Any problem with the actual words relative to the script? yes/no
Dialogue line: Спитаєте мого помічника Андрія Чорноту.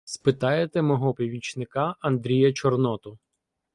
no